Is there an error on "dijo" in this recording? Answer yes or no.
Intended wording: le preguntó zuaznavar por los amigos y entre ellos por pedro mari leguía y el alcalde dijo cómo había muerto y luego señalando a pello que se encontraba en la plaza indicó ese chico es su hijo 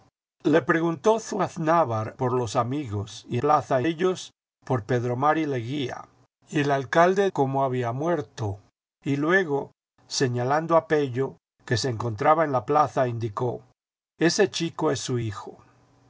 yes